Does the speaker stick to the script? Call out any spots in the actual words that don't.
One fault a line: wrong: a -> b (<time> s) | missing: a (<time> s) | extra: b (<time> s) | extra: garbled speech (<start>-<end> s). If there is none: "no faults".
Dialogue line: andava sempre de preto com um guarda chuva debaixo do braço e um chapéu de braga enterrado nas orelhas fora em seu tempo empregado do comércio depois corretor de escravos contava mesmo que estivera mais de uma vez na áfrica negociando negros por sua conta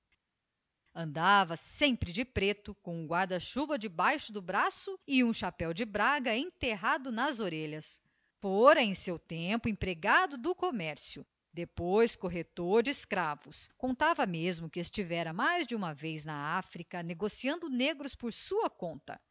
no faults